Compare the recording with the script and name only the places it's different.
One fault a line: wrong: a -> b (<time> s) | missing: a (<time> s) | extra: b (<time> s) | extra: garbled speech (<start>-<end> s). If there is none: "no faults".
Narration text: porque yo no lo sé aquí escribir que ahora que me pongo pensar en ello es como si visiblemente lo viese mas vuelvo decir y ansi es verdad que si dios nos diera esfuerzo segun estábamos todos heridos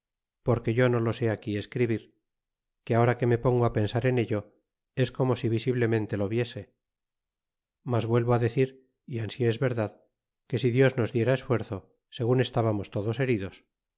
no faults